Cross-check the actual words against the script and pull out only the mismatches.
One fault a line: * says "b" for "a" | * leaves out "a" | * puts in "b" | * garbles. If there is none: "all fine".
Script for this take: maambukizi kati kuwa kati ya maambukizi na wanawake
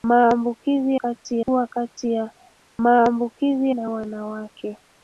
all fine